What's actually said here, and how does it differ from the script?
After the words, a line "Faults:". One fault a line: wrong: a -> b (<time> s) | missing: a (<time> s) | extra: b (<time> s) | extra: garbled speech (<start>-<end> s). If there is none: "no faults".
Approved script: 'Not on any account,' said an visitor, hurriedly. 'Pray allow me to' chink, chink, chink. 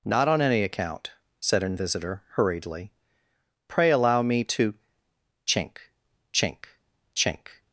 'Not on any account,' said an visitor, hurriedly. 'Pray allow me to' chink, chink, chink.
Faults:
no faults